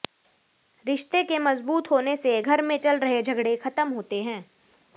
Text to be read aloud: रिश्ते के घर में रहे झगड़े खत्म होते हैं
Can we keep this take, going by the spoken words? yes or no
no